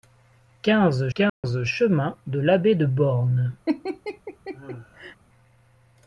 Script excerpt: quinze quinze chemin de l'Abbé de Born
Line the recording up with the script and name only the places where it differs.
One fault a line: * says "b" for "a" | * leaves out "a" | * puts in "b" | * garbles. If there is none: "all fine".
all fine